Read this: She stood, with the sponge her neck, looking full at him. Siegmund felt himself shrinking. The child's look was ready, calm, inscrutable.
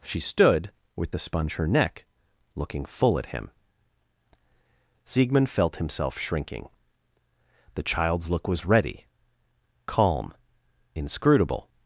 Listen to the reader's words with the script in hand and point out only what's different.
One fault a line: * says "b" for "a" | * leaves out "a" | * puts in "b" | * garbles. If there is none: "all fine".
all fine